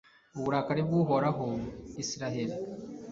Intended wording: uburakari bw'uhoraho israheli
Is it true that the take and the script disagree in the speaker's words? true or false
false